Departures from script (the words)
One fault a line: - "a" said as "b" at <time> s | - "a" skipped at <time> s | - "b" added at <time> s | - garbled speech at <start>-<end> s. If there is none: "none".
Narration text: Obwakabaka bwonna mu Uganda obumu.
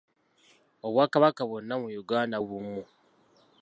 none